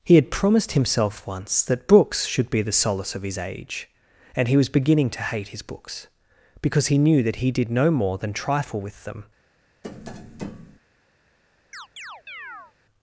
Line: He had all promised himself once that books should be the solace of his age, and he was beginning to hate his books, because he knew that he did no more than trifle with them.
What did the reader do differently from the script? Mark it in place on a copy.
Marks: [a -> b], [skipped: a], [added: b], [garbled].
He had [skipped: all] promised himself once that books should be the solace of his age, and he was beginning to hate his books, because he knew that he did no more than trifle with them.